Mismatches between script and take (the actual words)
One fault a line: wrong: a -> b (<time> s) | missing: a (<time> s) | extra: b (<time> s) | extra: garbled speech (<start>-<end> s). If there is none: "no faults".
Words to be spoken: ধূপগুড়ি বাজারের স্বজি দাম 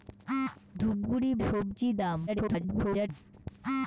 missing: বাজারের (1.3 s)
extra: garbled speech (2.3-3.1 s)